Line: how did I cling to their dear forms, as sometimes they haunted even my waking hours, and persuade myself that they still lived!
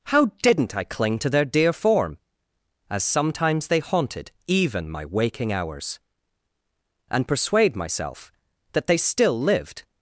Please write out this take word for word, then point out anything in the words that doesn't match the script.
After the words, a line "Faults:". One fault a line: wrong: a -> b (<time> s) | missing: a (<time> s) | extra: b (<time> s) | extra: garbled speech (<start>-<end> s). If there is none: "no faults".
how didn't I cling to their dear form, as sometimes they haunted even my waking hours, and persuade myself that they still lived!
Faults:
wrong: did -> didn't (0.4 s)
wrong: forms -> form (1.7 s)